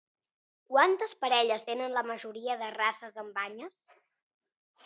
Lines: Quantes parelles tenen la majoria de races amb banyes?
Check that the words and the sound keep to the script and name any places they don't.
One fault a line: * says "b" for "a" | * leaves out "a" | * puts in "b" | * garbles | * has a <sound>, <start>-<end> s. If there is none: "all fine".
all fine